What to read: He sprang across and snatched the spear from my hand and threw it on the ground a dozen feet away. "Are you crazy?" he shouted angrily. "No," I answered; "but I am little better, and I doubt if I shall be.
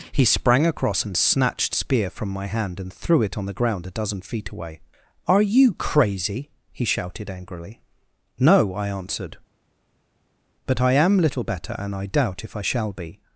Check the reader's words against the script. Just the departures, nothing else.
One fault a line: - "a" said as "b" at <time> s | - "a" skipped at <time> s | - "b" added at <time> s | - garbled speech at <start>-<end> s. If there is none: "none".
- "the" skipped at 1.7 s